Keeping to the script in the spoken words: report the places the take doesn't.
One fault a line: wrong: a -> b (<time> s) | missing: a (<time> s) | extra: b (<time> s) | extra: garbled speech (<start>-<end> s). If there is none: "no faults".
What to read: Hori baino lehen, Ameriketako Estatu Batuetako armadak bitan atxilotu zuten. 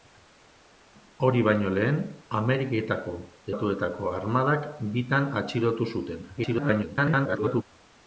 missing: Estatu (3.1 s)
extra: garbled speech (6.4-7.6 s)